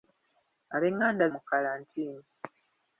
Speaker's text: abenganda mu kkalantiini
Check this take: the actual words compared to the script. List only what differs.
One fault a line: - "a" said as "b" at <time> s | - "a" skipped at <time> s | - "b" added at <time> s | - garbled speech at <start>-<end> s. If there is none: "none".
none